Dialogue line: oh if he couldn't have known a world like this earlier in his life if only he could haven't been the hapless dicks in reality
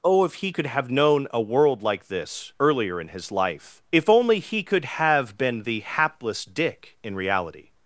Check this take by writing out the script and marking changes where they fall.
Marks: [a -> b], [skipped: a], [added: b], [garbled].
oh if he [couldn't -> could] have known a world like this earlier in his life if only he could [haven't -> have] been the hapless [dicks -> dick] in reality